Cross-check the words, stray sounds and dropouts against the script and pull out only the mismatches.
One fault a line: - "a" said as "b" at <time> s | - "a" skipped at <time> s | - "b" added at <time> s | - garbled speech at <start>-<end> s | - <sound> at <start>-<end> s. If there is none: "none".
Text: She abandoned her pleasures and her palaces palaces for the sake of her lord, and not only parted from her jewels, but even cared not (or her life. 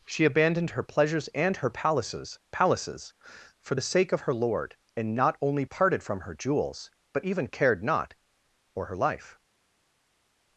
none